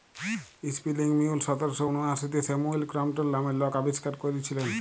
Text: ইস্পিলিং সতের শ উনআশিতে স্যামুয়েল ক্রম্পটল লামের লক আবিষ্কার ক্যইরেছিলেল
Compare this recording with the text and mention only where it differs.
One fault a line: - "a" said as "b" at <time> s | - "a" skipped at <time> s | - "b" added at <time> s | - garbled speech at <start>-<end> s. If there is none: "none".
- "মিউল" added at 1.2 s